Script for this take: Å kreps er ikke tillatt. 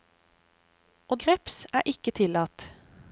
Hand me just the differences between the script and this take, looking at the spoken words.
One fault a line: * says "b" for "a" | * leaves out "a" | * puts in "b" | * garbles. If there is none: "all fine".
all fine